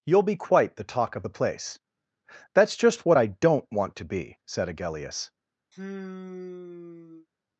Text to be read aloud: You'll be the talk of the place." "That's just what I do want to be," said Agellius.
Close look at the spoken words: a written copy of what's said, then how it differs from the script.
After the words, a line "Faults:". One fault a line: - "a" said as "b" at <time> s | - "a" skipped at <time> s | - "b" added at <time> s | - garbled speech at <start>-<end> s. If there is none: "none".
You'll be quite the talk of the place." "That's just what I don't want to be," said Agellius.
Faults:
- "quite" added at 0.3 s
- "do" said as "don't" at 3.3 s